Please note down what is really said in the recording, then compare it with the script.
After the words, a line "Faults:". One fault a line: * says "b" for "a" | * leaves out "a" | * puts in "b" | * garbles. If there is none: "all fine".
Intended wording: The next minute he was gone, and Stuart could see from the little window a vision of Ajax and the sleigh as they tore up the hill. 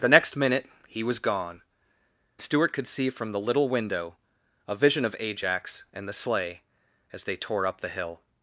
The next minute he was gone, Stuart could see from the little window a vision of Ajax and the sleigh as they tore up the hill.
Faults:
* leaves out "and"